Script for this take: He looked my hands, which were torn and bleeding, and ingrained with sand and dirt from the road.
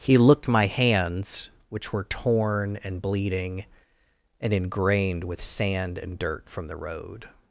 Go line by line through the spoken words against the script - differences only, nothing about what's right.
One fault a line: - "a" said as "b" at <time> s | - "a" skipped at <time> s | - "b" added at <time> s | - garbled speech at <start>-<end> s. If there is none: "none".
none